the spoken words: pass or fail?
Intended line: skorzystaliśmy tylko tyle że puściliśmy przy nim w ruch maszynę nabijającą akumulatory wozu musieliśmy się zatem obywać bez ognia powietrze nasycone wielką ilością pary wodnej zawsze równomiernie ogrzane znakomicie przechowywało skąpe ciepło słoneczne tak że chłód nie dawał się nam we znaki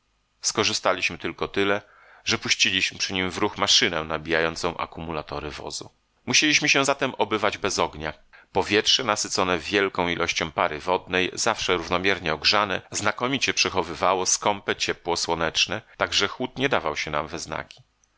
pass